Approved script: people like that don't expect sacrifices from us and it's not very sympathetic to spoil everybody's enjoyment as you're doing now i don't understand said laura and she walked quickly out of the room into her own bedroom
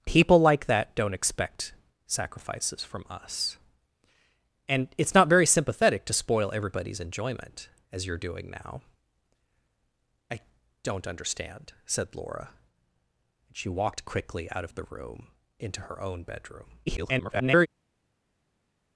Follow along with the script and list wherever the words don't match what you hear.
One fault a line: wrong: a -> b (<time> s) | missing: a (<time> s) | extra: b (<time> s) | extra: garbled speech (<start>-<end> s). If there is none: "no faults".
extra: garbled speech (16.9-17.7 s)